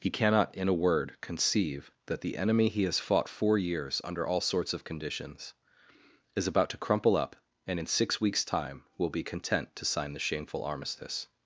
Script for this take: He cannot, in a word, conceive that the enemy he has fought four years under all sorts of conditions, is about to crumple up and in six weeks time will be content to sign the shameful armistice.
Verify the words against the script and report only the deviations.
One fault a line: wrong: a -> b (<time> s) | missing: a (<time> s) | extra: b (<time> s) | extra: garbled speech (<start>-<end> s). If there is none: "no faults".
no faults